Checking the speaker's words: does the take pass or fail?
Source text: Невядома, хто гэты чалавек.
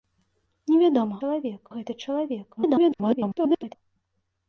fail